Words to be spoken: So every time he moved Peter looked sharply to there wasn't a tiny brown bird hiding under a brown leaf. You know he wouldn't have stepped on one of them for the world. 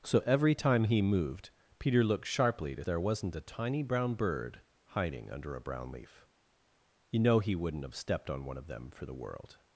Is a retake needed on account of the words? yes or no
no